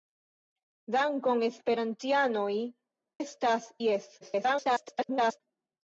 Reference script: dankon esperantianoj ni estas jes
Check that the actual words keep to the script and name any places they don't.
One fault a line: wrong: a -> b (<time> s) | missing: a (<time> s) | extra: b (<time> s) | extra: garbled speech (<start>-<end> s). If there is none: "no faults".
missing: ni (2.5 s)
extra: garbled speech (4.2-5.4 s)